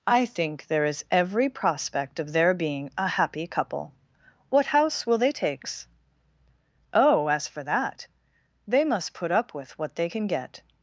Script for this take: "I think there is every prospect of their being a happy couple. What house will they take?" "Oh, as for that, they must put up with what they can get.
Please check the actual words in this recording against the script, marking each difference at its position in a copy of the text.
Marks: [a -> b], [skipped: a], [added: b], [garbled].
"I think there is every prospect of their being a happy couple. What house will they [take?" -> takes] "Oh, as for that, they must put up with what they can get.